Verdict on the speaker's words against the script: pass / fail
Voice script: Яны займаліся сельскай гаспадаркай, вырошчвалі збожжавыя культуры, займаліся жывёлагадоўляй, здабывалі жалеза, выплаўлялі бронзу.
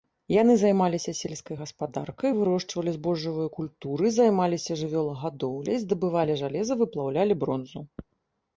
pass